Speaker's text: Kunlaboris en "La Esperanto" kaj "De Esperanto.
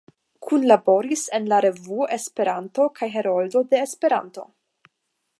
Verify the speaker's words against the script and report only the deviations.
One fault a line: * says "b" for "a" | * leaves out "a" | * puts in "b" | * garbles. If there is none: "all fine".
* puts in "Revuo"
* puts in "Heroldo"